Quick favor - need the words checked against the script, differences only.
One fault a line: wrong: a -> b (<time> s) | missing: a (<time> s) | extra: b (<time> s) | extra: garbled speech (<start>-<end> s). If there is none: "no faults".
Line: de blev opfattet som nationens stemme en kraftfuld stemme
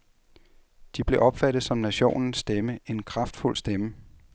no faults